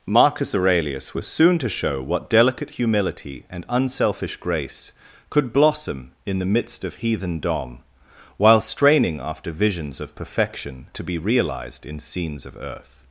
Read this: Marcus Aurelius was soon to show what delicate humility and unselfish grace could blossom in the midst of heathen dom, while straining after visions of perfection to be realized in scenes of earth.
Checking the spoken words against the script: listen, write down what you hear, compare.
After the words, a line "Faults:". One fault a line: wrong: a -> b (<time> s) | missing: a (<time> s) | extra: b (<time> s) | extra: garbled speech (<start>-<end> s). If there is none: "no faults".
Marcus Aurelius was soon to show what delicate humility and unselfish grace could blossom in the midst of heathen dom, while straining after visions of perfection to be realized in scenes of earth.
Faults:
no faults